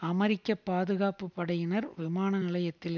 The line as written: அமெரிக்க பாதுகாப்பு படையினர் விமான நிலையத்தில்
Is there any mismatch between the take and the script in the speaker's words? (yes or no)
no